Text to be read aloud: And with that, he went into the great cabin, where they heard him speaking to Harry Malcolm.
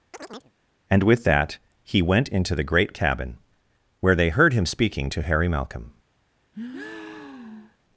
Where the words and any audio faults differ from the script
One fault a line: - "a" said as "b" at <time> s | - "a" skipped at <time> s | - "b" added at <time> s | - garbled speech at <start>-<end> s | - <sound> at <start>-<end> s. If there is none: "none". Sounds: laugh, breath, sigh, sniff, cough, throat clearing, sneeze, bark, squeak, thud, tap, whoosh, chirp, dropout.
- chirp at 0.1-0.5 s
- breath at 6.5-7.8 s